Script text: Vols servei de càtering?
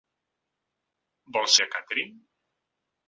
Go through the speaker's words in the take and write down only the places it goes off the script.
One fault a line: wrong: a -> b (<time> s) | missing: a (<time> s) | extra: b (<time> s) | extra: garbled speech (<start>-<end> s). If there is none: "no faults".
missing: servei (1.6 s)